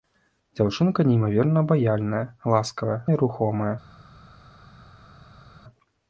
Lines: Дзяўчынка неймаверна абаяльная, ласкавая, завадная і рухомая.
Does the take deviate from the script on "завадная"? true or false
true